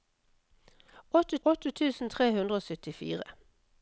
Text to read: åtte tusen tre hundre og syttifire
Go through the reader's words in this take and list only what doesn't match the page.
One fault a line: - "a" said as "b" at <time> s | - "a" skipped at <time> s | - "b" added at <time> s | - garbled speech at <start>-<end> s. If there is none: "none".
- "åtte" added at 1.5 s